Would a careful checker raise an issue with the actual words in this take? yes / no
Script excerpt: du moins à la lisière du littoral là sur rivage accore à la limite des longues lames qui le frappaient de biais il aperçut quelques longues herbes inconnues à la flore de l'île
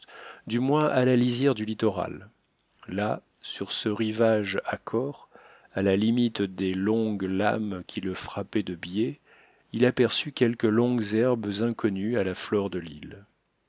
yes